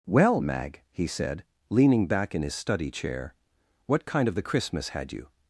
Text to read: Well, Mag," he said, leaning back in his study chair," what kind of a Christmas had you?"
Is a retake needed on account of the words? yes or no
yes